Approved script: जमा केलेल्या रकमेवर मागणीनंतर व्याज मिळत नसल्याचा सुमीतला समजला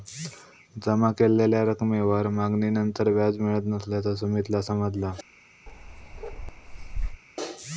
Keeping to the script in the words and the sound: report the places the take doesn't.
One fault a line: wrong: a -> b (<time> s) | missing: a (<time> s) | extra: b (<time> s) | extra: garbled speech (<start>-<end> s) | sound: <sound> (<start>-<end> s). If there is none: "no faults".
sound: bark (5.7-7.2 s)